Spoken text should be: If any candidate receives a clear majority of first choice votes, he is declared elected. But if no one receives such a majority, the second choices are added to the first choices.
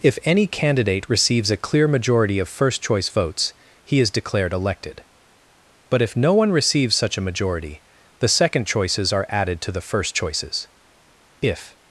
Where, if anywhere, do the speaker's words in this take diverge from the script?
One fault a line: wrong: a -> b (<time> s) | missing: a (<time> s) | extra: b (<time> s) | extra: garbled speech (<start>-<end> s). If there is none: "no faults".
extra: If (11.4 s)